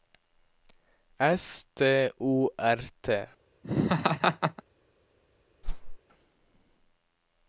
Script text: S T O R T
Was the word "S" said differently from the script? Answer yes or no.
no